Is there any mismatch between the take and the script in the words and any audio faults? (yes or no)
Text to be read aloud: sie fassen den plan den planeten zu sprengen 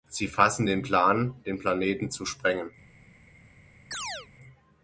yes